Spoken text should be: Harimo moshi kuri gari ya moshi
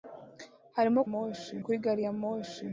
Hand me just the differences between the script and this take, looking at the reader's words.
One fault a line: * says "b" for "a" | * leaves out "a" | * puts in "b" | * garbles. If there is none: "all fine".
all fine